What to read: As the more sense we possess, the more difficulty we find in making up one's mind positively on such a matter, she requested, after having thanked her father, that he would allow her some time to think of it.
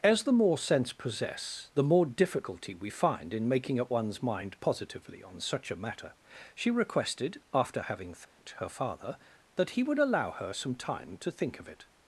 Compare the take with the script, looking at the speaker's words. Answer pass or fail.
fail